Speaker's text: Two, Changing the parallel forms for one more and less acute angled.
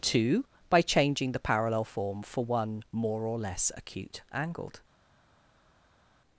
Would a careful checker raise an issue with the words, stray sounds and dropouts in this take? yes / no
yes